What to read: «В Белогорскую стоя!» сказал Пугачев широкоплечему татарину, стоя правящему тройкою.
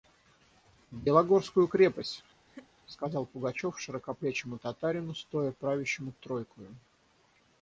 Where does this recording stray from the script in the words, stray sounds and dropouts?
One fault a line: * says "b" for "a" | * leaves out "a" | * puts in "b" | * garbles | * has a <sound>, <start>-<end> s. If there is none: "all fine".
* says "крепость" for "стоя"
* has a laugh, 2.5-2.7 s